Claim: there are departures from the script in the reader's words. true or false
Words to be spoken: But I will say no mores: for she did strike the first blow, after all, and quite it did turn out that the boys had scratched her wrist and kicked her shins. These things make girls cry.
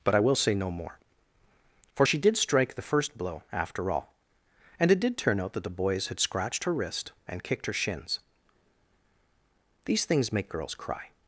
true